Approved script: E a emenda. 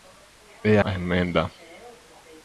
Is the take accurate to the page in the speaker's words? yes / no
yes